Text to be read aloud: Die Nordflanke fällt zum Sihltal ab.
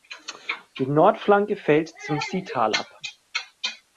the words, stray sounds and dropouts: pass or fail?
pass